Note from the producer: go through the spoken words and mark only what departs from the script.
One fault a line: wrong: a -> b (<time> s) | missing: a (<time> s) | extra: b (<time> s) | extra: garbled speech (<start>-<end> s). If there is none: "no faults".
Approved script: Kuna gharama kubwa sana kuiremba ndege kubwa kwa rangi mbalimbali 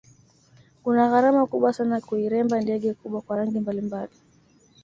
no faults